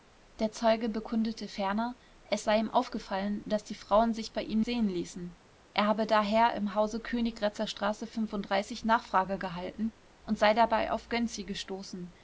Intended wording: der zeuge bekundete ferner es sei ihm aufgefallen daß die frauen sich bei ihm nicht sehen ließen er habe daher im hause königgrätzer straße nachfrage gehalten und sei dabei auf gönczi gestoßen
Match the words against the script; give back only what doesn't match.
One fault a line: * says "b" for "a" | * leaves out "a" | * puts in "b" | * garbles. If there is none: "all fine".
* leaves out "nicht"